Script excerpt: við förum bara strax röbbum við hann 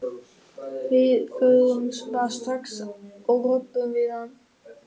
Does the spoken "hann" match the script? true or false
true